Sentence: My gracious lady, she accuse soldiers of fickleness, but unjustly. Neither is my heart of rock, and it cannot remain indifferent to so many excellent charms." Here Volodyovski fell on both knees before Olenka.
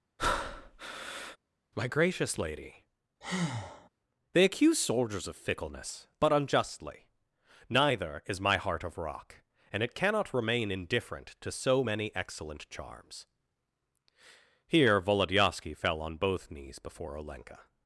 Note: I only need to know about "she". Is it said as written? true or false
false